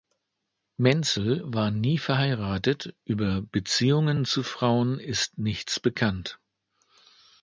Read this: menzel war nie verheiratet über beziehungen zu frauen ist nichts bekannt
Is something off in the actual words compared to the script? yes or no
no